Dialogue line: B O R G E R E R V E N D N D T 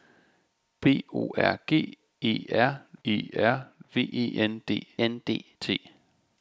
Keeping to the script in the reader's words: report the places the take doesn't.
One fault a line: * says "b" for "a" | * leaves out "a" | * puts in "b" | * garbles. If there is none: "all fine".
all fine